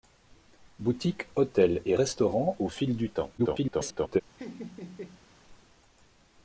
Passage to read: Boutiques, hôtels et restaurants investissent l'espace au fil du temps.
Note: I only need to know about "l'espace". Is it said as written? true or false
false